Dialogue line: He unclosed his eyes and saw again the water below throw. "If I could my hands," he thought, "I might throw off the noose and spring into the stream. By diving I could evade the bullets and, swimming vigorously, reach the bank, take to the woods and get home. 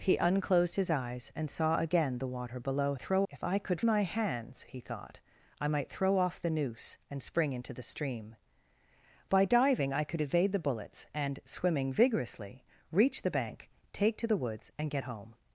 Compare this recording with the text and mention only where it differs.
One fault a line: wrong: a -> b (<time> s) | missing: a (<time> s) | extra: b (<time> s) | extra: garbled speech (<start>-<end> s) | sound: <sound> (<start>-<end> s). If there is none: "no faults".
no faults